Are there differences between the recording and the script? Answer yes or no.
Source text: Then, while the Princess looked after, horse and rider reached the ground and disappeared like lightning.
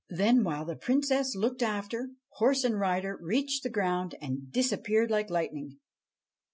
no